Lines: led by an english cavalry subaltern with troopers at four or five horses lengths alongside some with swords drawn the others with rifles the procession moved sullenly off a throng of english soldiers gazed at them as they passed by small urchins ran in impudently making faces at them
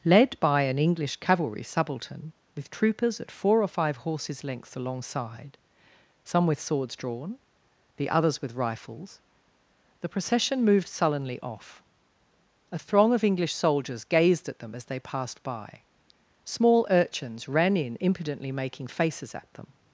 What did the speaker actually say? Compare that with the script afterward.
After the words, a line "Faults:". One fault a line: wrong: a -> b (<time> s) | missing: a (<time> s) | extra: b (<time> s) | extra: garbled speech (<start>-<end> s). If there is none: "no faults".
led by an english cavalry subaltern with troopers at four or five horses lengths alongside some with swords drawn the others with rifles the procession moved sullenly off a throng of english soldiers gazed at them as they passed by small urchins ran in impudently making faces at them
Faults:
no faults